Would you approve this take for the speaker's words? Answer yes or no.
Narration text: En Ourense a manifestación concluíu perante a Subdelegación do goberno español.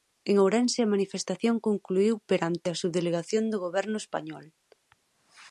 yes